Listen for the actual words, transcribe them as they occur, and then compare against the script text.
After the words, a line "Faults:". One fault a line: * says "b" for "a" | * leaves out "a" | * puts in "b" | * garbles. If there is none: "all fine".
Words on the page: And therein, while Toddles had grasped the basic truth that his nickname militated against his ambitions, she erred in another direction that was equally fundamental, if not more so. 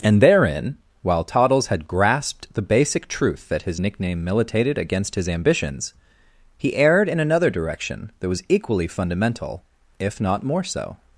And therein, while Toddles had grasped the basic truth that his nickname militated against his ambitions, he erred in another direction that was equally fundamental, if not more so.
Faults:
* says "he" for "she"